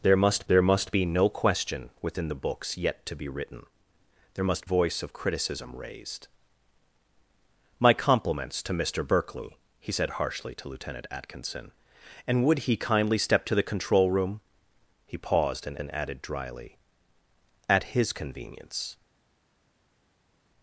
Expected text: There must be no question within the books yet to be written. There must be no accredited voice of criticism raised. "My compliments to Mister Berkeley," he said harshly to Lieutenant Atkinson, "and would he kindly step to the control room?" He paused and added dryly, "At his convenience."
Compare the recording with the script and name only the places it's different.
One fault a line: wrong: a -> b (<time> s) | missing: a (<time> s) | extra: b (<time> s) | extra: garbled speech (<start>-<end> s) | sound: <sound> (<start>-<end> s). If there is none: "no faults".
extra: there must (0.5 s)
missing: be no accredited (4.6 s)
extra: and (15.8 s)